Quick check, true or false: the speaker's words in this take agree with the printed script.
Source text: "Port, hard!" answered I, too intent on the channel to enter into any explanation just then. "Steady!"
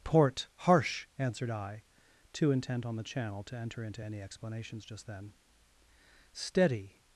false